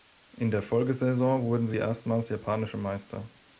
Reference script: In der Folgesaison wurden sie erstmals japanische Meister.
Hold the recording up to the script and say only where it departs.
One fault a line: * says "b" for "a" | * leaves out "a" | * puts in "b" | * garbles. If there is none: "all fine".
all fine